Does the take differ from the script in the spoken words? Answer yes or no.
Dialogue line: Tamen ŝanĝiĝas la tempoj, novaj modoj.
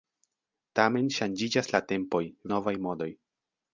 no